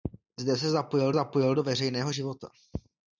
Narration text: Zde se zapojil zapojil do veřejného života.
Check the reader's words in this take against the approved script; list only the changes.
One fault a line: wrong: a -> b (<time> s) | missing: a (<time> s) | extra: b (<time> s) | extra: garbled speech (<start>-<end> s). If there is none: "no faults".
no faults